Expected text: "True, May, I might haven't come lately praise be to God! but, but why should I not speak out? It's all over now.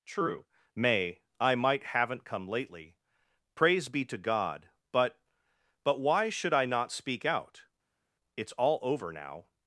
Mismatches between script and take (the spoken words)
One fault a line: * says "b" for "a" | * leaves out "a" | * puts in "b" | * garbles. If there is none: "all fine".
all fine